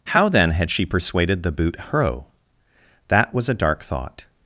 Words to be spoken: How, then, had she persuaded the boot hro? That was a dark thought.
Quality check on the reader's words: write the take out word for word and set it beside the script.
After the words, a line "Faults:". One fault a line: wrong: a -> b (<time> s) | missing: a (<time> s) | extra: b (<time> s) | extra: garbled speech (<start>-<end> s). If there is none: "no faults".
How, then, had she persuaded the boot hro? That was a dark thought.
Faults:
no faults